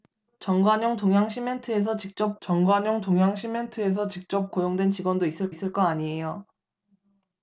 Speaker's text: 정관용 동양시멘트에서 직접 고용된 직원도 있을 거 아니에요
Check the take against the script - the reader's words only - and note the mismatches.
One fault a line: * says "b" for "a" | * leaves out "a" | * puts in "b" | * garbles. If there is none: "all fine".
* puts in "정관용 동양시멘트에서 직접"
* puts in "있을"